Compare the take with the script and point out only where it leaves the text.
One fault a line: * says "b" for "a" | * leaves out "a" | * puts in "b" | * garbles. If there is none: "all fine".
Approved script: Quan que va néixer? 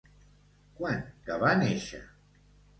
all fine